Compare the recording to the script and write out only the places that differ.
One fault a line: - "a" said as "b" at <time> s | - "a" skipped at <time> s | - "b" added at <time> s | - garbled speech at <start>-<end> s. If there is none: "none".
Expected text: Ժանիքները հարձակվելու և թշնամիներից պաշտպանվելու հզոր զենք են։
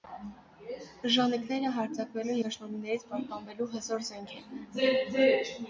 - "և" skipped at 2.4 s